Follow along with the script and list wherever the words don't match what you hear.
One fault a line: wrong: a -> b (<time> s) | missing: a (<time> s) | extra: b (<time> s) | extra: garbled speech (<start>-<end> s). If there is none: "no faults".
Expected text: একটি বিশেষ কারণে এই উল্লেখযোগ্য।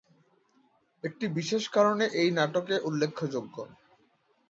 extra: নাটকে (2.3 s)